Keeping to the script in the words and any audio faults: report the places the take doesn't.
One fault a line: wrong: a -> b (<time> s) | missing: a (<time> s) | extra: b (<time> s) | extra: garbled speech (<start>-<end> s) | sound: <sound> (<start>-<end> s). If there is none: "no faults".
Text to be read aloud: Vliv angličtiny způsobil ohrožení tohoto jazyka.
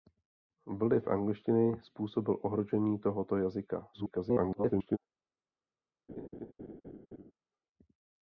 extra: garbled speech (3.9-5.0 s)
sound: laugh (6.1-7.3 s)